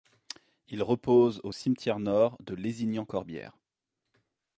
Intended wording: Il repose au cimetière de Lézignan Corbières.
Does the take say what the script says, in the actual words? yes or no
no